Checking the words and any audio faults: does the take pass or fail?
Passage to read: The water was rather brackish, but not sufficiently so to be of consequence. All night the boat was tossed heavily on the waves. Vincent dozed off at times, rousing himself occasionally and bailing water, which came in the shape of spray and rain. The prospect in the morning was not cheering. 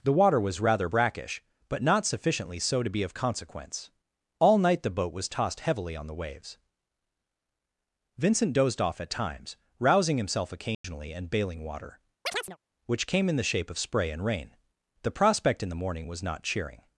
fail